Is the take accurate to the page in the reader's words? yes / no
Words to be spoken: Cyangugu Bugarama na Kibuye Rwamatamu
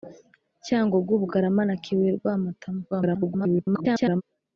no